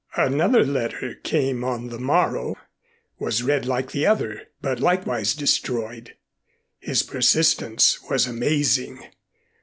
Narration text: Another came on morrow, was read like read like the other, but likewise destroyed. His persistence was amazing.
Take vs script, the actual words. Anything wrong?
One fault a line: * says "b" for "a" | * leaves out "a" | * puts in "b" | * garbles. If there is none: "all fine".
* puts in "letter"
* puts in "the"
* leaves out "read like"